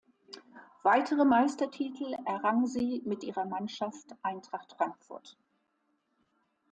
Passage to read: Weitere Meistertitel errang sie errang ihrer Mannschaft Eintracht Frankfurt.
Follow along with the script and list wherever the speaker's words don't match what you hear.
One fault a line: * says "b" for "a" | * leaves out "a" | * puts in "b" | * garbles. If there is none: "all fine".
* says "mit" for "errang"